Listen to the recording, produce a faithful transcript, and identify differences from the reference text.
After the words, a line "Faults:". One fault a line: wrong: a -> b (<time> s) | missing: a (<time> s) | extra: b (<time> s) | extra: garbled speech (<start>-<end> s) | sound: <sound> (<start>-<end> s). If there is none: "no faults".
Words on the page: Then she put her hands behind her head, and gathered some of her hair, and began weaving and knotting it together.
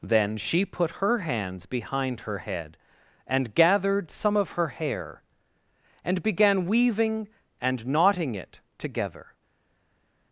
Then she put her hands behind her head, and gathered some of her hair, and began weaving and knotting it together.
Faults:
no faults